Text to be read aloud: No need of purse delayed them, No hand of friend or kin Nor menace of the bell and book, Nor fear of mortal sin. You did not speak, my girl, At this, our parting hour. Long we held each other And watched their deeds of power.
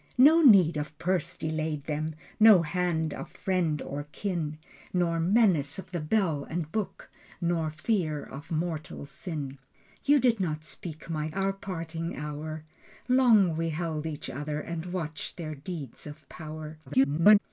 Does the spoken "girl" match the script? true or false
false